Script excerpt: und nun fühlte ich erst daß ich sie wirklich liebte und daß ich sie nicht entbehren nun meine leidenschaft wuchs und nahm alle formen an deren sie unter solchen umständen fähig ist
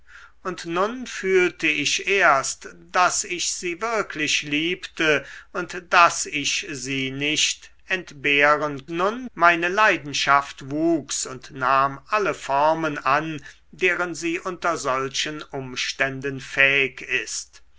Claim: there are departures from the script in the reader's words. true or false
false